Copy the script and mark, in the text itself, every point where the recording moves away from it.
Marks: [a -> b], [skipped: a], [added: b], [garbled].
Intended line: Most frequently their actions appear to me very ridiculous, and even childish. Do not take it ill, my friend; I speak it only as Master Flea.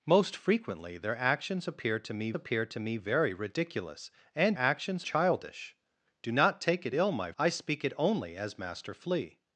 Most frequently their actions appear to me [added: appear to me] very ridiculous, and [even -> actions] childish. Do not take it ill, my [skipped: friend;] I speak it only as Master Flea.